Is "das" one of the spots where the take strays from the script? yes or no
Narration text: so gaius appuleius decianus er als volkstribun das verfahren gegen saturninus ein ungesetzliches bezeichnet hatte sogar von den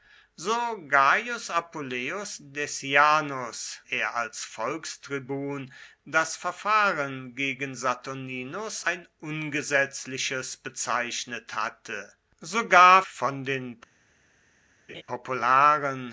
no